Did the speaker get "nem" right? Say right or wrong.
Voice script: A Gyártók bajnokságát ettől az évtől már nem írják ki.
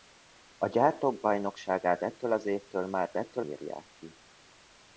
wrong